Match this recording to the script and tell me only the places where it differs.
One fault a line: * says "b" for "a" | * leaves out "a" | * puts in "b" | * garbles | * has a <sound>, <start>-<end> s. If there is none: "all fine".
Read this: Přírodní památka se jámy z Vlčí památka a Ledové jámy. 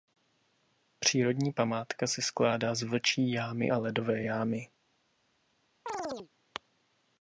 * says "skládá" for "jámy"
* says "jámy" for "památka"
* has a chirp, 5.9-6.3 s